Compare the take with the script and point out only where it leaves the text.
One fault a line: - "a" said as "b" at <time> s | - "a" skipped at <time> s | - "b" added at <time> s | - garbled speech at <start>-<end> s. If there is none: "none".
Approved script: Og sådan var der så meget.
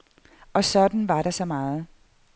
none